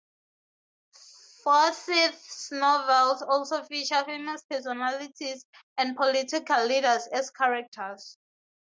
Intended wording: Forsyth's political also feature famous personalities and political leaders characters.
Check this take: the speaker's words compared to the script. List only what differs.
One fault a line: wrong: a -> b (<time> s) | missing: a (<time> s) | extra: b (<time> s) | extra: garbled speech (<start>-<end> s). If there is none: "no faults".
wrong: political -> novels (2.5 s)
extra: as (7.1 s)